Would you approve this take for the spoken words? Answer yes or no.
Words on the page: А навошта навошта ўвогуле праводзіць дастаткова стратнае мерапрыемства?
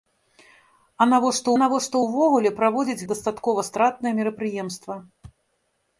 yes